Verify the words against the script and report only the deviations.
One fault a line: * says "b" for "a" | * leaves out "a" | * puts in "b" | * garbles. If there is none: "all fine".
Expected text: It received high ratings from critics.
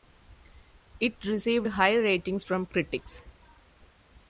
all fine